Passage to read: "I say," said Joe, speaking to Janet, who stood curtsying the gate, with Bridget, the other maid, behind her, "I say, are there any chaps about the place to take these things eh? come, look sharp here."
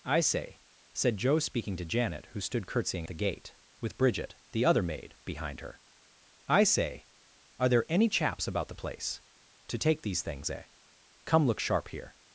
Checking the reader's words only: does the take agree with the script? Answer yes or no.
yes